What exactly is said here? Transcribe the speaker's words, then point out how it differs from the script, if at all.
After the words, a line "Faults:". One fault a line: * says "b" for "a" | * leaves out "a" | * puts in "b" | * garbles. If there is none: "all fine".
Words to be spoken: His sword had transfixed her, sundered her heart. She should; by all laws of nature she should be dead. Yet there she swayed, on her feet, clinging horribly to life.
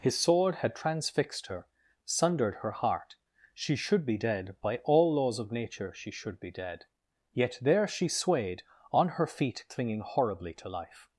His sword had transfixed her, sundered her heart. She should be dead; by all laws of nature she should be dead. Yet there she swayed, on her feet, clinging horribly to life.
Faults:
* puts in "be dead"